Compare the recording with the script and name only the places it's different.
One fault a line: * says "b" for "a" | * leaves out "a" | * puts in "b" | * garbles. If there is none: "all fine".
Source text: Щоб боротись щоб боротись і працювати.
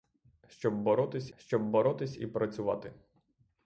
all fine